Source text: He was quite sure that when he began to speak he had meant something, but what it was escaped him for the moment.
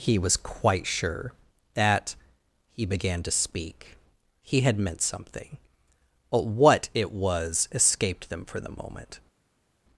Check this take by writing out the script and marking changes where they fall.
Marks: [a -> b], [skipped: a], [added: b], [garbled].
He was quite sure that [skipped: when] he began to speak he had meant something, but what it was escaped [him -> them] for the moment.